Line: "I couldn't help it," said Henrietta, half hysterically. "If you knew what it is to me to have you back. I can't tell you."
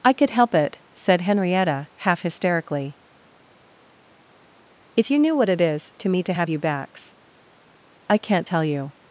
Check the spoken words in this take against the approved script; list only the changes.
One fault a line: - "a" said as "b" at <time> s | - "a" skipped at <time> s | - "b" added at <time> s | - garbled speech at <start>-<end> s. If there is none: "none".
- "couldn't" said as "could" at 0.1 s
- "back" said as "backs" at 6.6 s